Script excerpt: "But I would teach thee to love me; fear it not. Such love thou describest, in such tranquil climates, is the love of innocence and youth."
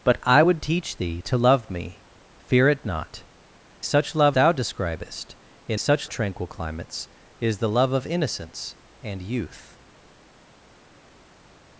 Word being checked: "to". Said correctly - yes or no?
yes